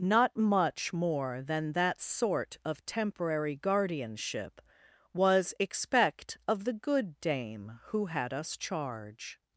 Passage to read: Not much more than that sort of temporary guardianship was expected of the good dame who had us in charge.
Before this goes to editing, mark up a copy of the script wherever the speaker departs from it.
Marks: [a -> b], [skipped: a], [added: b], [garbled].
Not much more than that sort of temporary guardianship was [expected -> expect] of the good dame who had us [skipped: in] charge.